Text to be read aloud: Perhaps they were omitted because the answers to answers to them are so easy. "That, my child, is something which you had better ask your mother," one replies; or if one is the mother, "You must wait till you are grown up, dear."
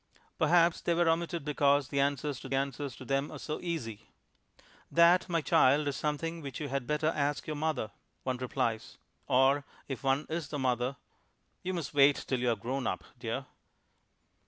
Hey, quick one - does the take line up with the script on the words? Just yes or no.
yes